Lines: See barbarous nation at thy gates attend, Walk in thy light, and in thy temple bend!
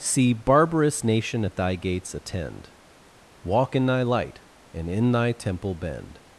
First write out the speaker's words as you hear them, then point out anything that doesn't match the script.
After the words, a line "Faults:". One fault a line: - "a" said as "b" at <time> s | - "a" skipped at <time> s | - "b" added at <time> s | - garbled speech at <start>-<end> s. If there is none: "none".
See barbarous nation at thy gates attend, Walk in thy light, and in thy temple bend!
Faults:
none